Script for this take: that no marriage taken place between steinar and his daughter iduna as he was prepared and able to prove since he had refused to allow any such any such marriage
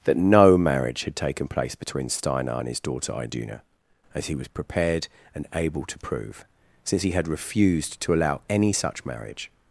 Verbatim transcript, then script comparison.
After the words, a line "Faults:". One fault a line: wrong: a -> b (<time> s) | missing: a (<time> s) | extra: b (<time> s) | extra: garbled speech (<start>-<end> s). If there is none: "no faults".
that no marriage had taken place between steinar and his daughter iduna as he was prepared and able to prove since he had refused to allow any such marriage
Faults:
extra: had (1.0 s)
missing: any such (9.1 s)